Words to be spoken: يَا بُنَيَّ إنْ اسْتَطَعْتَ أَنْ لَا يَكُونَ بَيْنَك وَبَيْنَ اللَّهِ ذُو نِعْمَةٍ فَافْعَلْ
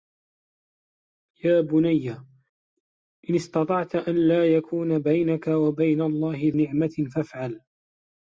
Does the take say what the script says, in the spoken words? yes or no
no